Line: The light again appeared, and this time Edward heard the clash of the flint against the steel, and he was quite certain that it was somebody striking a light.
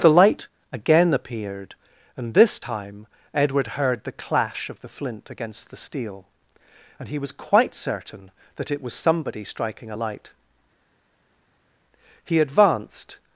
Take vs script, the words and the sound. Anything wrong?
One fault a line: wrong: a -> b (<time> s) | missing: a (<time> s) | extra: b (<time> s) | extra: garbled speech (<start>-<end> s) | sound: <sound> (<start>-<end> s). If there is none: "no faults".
extra: He advanced (12.2 s)